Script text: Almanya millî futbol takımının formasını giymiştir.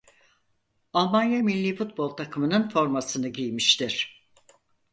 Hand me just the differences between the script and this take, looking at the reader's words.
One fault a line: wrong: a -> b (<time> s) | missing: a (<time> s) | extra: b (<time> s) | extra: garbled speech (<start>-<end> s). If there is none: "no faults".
no faults